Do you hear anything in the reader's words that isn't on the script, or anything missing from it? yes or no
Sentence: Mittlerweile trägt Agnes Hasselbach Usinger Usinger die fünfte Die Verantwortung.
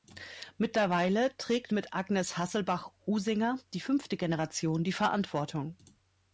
yes